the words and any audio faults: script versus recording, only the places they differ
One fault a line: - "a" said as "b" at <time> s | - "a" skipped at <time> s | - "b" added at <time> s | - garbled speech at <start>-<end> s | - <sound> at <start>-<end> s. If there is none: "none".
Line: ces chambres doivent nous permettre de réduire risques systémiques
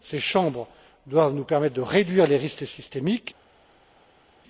- "les" added at 2.3 s